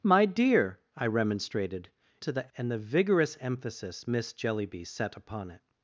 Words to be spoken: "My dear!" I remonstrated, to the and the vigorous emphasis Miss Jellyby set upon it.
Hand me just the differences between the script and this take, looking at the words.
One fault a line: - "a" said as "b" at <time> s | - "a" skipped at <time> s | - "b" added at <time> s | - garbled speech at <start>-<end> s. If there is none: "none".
none